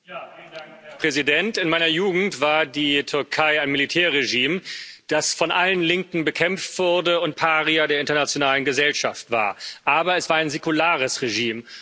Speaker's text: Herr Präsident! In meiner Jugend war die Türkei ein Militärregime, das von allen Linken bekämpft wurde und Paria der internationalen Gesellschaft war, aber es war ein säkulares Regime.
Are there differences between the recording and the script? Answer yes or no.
no